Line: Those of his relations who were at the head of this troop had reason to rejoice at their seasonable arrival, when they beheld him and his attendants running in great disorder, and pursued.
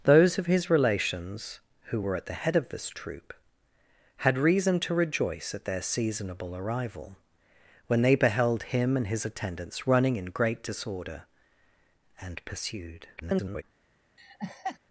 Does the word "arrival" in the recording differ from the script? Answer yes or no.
no